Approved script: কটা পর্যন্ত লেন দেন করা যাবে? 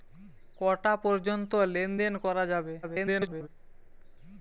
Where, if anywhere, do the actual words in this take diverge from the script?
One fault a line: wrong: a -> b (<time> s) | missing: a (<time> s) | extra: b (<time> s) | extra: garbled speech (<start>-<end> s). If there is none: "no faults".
extra: garbled speech (2.8-3.5 s)